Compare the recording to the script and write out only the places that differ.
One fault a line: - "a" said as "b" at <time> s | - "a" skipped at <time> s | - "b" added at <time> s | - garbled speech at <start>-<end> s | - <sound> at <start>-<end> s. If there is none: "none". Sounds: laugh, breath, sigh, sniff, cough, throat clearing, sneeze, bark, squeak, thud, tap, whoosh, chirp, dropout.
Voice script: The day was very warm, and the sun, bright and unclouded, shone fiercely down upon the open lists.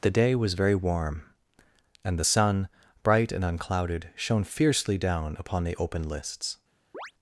- chirp at 6.9-7.1 s